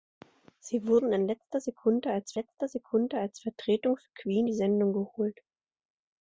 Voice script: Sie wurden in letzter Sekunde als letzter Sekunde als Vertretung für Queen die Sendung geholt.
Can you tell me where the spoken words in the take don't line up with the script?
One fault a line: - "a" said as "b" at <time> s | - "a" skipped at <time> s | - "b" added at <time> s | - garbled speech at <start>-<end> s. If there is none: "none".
none